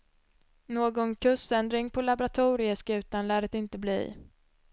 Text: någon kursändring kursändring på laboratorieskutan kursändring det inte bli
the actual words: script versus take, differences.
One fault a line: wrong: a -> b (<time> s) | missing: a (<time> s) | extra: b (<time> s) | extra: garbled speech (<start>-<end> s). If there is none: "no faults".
missing: kursändring (1.9 s)
wrong: kursändring -> lär (3.3 s)